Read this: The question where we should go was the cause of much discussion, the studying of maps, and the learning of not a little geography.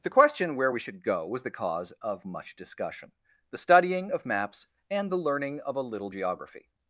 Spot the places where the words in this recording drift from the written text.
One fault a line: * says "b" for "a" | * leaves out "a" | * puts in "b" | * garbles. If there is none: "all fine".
* leaves out "not"